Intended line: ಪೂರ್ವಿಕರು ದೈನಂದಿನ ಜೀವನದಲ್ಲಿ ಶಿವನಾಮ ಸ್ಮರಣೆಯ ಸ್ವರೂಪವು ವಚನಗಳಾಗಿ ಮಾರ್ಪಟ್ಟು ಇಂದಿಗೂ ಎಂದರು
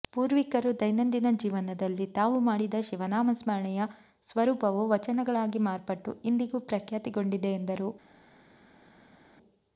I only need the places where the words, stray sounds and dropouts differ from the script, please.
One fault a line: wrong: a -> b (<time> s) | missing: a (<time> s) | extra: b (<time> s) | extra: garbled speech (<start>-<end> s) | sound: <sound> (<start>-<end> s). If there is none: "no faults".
extra: ತಾವು ಮಾಡಿದ (2.1 s)
extra: ಪ್ರಖ್ಯಾತಿಗೊಂಡಿದೆ (6.7 s)